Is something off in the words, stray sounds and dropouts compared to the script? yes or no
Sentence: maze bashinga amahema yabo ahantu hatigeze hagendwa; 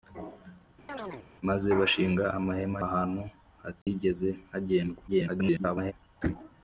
yes